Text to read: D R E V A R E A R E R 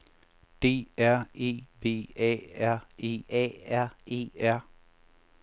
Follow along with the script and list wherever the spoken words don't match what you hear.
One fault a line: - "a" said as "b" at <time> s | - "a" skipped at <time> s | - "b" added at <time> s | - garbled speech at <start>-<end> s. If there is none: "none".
none